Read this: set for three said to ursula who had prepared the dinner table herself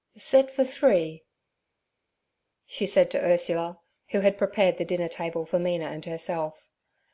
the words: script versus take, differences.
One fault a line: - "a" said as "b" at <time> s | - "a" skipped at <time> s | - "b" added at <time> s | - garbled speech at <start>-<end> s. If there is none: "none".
- "she" added at 2.7 s
- "for mina and" added at 5.4 s